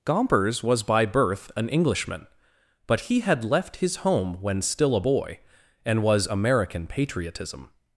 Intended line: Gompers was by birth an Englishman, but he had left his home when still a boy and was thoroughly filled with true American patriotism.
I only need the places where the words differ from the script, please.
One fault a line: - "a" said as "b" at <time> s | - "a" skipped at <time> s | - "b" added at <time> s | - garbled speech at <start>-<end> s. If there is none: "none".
- "thoroughly filled with true" skipped at 6.3 s